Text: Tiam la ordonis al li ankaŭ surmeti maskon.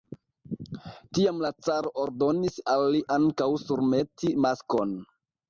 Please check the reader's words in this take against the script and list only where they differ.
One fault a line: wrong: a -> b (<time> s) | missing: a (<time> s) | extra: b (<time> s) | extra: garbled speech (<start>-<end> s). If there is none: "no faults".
extra: caro (1.7 s)